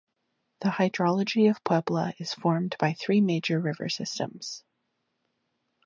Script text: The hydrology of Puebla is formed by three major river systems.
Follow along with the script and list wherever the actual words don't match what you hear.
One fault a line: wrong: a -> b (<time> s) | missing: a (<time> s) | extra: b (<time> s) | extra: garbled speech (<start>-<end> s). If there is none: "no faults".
no faults